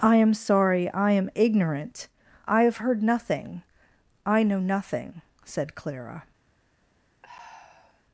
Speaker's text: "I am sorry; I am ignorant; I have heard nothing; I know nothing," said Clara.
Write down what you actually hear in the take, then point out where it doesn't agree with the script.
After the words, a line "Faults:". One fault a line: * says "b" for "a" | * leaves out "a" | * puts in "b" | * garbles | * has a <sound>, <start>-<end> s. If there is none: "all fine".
"I am sorry; I am ignorant; I have heard nothing; I know nothing," said Clara.
Faults:
* has a sigh, 7.2-8.0 s